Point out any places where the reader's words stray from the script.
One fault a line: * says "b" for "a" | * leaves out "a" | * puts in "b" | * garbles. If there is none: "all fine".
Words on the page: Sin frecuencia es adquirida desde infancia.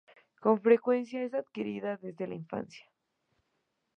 * says "Con" for "Sin"
* puts in "la"